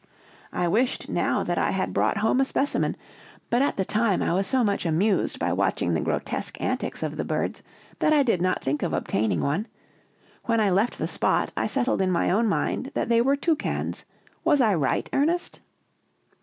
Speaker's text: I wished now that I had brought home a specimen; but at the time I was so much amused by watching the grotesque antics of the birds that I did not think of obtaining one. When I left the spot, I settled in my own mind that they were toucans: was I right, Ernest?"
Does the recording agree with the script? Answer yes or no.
yes